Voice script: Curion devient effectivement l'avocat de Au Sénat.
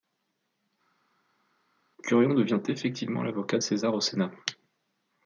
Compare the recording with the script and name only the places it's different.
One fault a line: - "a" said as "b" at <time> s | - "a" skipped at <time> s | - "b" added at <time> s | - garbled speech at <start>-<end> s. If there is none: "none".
- "César" added at 3.6 s